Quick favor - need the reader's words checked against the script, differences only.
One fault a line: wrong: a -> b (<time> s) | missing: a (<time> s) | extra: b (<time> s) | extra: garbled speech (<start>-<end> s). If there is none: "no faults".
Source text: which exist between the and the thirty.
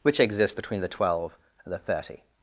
wrong: exist -> exists (0.2 s)
extra: twelve (0.9 s)